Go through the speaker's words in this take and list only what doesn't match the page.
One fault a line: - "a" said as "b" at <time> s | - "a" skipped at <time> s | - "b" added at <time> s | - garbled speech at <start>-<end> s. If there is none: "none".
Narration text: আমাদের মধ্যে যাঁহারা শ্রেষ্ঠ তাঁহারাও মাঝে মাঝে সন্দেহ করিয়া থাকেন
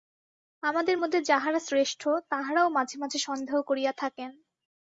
none